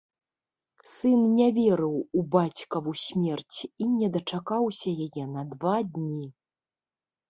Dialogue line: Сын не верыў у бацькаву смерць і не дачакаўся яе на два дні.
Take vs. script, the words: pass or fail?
pass